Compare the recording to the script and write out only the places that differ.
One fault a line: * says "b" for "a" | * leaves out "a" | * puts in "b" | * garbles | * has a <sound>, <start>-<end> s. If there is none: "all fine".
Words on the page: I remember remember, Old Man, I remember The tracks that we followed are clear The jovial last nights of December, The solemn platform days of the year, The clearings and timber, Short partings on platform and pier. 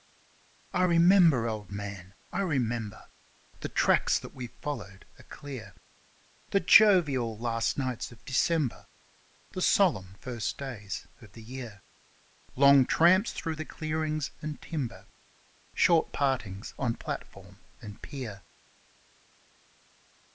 * leaves out "remember"
* says "first" for "platform"
* puts in "Long tramps through"